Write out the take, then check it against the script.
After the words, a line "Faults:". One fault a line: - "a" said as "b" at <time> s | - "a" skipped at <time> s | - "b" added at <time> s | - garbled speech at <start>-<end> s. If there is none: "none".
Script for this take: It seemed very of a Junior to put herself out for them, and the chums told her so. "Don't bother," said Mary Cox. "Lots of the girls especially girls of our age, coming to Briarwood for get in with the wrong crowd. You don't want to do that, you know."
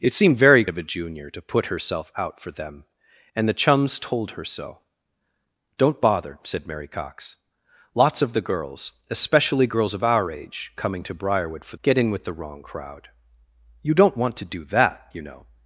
It seemed very of a Junior to put herself out for them, and the chums told her so. "Don't bother," said Mary Cox. "Lots of the girls especially girls of our age, coming to Briarwood for get in with the wrong crowd. You don't want to do that, you know."
Faults:
none